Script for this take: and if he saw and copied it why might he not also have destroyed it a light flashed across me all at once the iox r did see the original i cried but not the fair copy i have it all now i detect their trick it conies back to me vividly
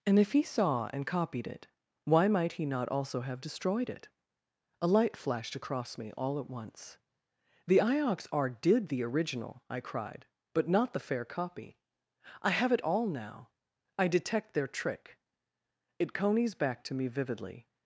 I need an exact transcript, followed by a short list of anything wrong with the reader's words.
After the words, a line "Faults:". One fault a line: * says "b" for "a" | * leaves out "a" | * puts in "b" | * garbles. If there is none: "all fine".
and if he saw and copied it why might he not also have destroyed it a light flashed across me all at once the iox r did the original i cried but not the fair copy i have it all now i detect their trick it conies back to me vividly
Faults:
* leaves out "see"